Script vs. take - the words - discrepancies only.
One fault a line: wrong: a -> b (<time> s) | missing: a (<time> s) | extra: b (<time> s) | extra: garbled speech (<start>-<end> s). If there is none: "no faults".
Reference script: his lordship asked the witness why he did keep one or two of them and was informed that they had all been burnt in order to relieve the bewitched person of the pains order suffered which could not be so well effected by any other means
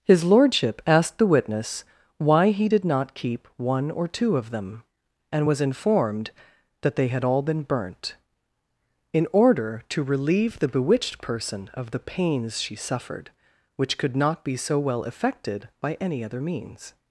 extra: not (2.8 s)
wrong: order -> she (12.6 s)